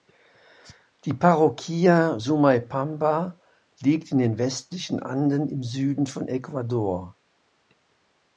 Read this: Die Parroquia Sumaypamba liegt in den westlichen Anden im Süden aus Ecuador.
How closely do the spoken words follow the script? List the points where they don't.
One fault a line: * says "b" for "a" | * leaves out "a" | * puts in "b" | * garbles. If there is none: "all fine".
* says "von" for "aus"